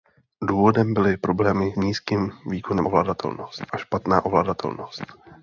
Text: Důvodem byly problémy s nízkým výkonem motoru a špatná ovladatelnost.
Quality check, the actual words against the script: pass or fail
fail